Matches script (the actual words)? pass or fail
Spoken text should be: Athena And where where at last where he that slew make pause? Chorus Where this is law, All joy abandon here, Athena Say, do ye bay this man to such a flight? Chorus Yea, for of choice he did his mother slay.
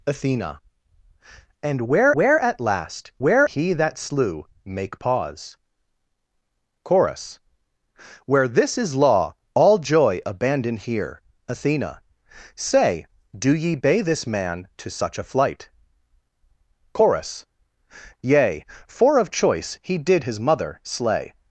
pass